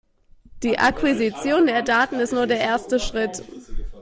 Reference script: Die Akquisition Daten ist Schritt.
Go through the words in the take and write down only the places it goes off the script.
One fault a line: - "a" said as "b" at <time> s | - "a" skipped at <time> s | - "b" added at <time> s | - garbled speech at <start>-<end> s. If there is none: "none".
- "der" added at 1.6 s
- "nur der erste" added at 2.3 s